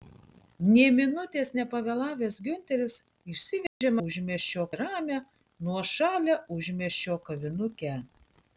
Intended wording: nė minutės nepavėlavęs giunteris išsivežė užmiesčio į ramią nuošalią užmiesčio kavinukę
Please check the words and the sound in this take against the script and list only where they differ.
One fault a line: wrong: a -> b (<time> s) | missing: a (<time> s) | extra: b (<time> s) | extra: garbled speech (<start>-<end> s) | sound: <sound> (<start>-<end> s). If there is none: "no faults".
sound: dropout (3.7-3.8 s)